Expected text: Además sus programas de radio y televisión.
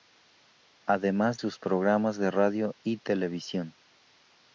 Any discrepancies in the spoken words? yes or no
no